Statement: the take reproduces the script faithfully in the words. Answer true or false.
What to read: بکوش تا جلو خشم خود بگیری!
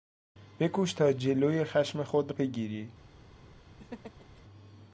true